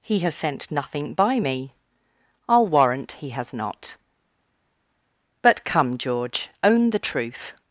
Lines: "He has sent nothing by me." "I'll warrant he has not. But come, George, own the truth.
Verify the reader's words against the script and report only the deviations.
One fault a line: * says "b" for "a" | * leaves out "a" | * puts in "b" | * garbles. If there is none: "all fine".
all fine